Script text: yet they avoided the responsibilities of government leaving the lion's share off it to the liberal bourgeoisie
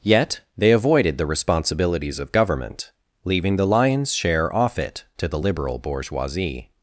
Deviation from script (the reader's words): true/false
false